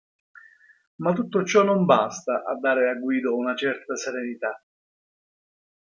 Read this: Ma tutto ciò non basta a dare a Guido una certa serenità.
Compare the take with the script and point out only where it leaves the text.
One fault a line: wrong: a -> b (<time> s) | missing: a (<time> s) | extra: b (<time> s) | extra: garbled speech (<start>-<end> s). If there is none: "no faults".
no faults